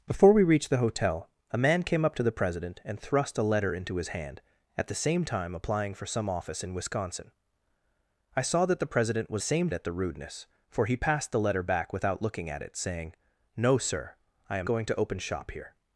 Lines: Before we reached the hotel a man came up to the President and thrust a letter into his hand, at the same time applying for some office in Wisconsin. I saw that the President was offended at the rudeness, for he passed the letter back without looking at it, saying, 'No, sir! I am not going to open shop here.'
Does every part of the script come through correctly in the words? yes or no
no